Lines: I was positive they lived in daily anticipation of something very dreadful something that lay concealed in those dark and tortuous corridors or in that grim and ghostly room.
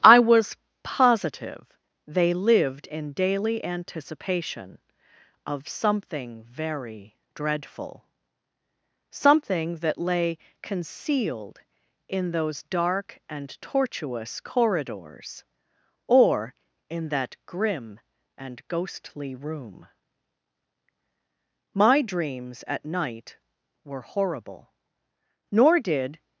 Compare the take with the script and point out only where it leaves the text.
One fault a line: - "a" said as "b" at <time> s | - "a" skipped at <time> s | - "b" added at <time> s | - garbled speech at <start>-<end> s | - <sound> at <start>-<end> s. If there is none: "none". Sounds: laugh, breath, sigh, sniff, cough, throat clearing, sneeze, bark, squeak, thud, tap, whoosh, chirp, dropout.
- "My dreams at night were horrible nor did" added at 21.7 s